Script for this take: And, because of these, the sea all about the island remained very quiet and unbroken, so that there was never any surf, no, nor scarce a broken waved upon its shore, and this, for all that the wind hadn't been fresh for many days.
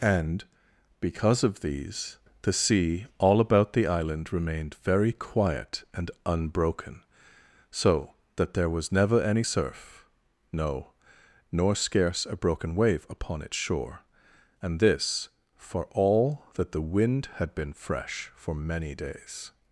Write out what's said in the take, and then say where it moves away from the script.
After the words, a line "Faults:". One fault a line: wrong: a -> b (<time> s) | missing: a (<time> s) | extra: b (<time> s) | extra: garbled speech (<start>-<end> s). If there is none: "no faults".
And, because of these, the sea all about the island remained very quiet and unbroken, so that there was never any surf, no, nor scarce a broken wave upon its shore, and this, for all that the wind had been fresh for many days.
Faults:
wrong: waved -> wave (12.8 s)
wrong: hadn't -> had (17.4 s)